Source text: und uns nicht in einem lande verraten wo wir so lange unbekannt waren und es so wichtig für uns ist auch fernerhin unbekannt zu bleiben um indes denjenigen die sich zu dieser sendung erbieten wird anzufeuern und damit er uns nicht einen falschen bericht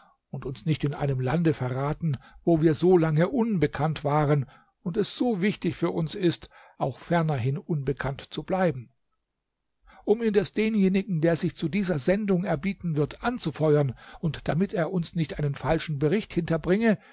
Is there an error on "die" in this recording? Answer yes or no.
yes